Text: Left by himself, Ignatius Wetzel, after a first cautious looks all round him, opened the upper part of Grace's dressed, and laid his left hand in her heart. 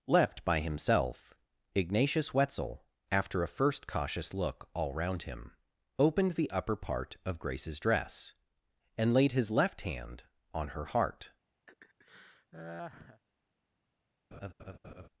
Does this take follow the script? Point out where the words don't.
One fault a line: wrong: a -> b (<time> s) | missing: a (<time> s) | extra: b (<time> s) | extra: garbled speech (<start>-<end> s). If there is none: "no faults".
wrong: looks -> look (4.3 s)
wrong: dressed -> dress (7.8 s)
wrong: in -> on (10.5 s)